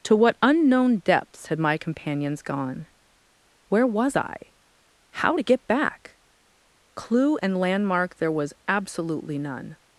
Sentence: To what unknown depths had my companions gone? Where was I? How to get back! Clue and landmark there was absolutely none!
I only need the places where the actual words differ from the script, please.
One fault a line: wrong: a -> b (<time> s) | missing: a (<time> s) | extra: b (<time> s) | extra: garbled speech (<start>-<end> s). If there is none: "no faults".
no faults